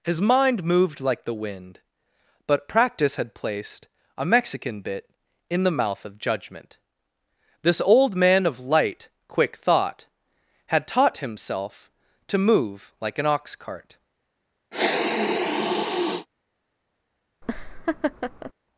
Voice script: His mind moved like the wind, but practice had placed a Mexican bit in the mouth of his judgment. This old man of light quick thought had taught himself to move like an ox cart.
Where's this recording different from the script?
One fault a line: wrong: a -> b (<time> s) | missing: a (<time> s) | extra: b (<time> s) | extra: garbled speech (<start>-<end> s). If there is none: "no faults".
missing: his (6.2 s)